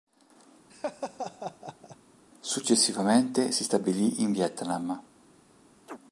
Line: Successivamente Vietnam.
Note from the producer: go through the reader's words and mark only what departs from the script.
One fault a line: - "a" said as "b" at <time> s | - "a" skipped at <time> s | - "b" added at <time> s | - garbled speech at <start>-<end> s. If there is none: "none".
- "si stabilì in" added at 3.5 s